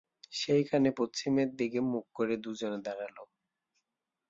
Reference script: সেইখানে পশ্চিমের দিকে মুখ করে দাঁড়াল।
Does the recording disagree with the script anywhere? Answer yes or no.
yes